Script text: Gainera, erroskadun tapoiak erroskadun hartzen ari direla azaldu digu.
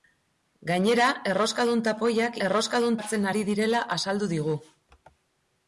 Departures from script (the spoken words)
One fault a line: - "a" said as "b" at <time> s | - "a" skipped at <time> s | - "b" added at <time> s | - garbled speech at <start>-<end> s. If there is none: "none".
none